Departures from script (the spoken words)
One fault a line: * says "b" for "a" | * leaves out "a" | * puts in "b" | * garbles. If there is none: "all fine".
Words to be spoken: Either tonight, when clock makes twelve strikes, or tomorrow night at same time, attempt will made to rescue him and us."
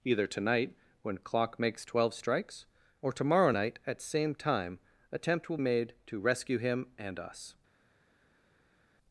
all fine